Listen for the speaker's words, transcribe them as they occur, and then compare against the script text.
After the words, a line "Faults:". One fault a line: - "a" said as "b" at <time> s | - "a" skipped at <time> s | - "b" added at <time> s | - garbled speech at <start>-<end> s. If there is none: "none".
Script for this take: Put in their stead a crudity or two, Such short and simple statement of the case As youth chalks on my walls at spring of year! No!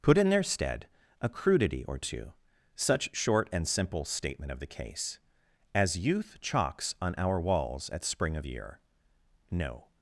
Put in their stead a crudity or two, Such short and simple statement of the case As youth chalks on our walls at spring of year! No!
Faults:
- "my" said as "our" at 7.2 s